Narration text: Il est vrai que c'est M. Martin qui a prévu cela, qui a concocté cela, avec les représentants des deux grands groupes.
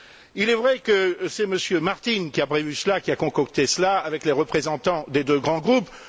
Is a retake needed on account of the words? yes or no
no